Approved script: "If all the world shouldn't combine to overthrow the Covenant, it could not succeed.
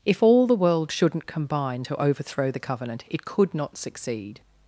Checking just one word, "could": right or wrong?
right